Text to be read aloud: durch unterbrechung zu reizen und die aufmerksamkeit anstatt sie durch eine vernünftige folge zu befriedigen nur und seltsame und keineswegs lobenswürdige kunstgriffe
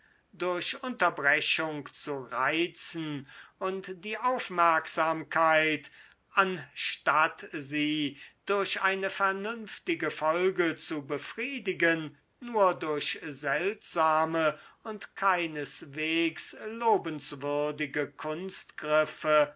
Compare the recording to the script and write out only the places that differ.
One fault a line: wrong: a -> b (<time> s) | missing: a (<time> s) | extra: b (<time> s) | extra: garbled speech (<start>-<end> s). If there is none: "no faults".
wrong: und -> durch (12.7 s)